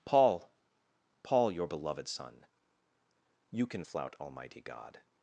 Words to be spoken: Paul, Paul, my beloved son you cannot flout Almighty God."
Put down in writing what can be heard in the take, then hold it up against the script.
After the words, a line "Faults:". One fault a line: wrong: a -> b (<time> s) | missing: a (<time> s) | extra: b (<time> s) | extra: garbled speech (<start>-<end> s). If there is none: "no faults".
Paul, Paul, your beloved son you can flout Almighty God."
Faults:
wrong: my -> your (1.5 s)
wrong: cannot -> can (3.7 s)